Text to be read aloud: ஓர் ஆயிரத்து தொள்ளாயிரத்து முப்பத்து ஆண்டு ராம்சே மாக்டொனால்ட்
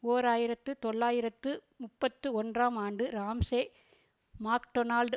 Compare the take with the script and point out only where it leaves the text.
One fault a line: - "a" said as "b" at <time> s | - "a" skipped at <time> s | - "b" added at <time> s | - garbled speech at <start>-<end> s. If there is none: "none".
- "ஒன்றாம்" added at 2.4 s